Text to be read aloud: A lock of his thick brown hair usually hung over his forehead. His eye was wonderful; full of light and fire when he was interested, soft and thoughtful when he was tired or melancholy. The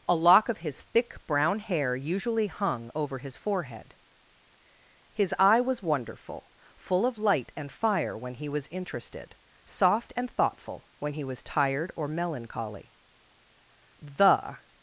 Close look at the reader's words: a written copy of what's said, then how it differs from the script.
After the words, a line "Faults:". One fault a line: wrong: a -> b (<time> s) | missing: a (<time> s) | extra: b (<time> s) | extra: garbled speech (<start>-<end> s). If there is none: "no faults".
A lock of his thick brown hair usually hung over his forehead. His eye was wonderful; full of light and fire when he was interested, soft and thoughtful when he was tired or melancholy. The
Faults:
no faults